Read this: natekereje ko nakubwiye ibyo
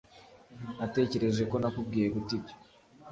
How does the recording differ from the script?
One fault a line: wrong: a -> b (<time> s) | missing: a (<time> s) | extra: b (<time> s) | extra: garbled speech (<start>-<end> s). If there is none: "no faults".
extra: guta (2.1 s)